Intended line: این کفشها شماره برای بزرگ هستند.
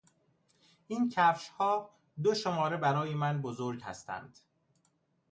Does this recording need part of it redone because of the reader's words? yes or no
yes